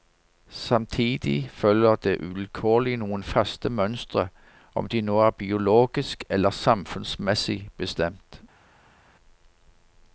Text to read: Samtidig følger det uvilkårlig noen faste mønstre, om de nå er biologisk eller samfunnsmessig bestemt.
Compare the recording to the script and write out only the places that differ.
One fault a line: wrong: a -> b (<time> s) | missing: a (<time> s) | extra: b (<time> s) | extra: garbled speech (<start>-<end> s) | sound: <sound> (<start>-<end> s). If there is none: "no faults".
no faults